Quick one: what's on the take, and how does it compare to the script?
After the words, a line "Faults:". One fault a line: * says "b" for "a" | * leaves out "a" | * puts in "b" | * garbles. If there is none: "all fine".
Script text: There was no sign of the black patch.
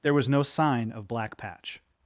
There was no sign of black patch.
Faults:
* leaves out "the"